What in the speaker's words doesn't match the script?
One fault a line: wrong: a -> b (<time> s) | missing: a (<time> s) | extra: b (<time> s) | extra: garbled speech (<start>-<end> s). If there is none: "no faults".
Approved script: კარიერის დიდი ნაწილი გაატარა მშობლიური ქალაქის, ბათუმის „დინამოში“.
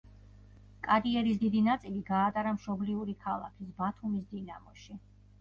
no faults